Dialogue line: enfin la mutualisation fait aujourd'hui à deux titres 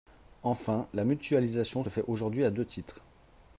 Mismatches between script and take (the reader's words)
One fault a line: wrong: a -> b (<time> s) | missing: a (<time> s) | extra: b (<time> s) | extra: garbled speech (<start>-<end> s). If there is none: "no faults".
no faults